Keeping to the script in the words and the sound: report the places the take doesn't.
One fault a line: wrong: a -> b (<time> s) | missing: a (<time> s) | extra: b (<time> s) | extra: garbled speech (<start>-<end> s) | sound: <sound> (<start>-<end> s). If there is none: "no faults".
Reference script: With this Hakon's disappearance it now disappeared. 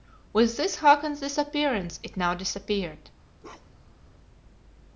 sound: bark (3.4-4.0 s)